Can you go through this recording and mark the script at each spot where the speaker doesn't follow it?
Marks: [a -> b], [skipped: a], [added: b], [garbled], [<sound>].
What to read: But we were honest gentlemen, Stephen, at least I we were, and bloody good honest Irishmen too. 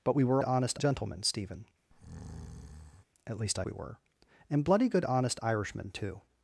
But we were honest gentlemen, Stephen, [breath] at least I we were, and bloody good honest Irishmen too.